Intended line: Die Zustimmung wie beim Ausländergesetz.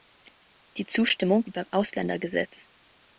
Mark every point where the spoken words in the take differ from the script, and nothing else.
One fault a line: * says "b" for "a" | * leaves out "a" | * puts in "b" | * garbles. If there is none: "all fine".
all fine